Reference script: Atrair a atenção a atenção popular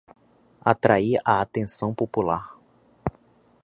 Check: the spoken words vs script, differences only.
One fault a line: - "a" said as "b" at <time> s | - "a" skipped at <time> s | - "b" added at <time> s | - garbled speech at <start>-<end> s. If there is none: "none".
- "a atenção" skipped at 1.9 s